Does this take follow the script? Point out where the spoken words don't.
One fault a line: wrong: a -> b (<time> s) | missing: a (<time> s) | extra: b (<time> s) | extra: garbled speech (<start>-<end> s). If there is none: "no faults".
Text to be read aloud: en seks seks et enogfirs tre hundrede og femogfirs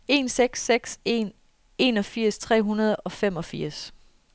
wrong: et -> en (1.1 s)